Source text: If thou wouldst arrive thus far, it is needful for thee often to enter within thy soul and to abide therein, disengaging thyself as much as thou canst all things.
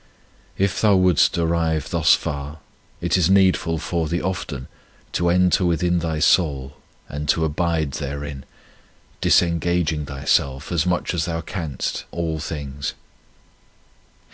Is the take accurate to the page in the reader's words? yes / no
yes